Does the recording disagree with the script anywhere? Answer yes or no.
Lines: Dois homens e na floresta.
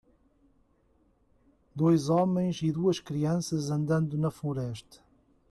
yes